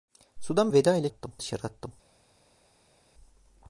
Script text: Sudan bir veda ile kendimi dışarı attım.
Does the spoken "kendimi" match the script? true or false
false